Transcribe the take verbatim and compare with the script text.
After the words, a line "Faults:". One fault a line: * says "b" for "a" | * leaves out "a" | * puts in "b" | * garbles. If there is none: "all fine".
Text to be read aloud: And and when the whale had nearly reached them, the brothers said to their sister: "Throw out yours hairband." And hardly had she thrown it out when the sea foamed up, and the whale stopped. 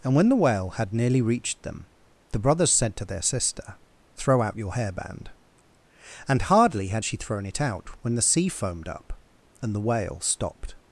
And when the whale had nearly reached them, the brothers said to their sister: "Throw out your hairband." And hardly had she thrown it out when the sea foamed up, and the whale stopped.
Faults:
* leaves out "and"
* says "your" for "yours"